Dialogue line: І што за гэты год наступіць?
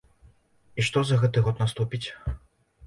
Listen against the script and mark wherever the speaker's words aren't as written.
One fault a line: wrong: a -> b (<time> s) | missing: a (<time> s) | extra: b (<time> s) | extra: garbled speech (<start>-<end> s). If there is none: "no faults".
no faults